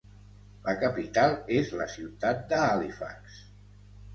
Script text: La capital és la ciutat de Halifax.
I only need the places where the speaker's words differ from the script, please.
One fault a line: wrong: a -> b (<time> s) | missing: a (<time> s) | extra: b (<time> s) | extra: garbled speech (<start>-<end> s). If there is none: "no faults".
no faults